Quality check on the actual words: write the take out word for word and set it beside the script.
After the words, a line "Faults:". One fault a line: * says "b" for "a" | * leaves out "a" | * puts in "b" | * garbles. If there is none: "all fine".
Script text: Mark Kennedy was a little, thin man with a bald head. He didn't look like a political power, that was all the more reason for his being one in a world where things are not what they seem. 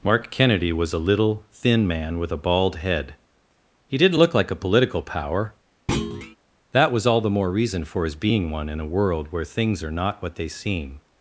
Mark Kennedy was a little, thin man with a bald head. He didn't look like a political power, that was all the more reason for his being one in a world where things are not what they seem.
Faults:
all fine